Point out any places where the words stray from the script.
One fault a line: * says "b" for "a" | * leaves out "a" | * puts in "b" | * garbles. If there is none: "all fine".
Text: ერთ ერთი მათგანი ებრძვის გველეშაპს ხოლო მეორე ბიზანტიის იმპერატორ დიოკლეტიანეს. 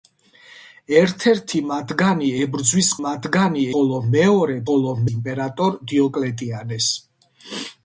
* says "მათგანი" for "გველეშაპს"
* says "ხოლო" for "ბიზანტიის"